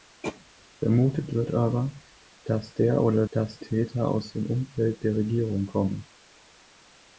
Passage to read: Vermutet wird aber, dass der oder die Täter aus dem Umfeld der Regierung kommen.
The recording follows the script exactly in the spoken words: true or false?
false